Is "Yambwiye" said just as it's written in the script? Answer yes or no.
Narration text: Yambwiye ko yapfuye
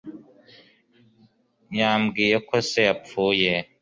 yes